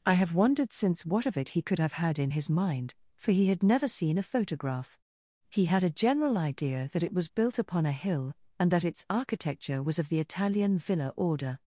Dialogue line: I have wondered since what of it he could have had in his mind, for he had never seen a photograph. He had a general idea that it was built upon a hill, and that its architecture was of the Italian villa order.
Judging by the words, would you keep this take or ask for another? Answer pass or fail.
pass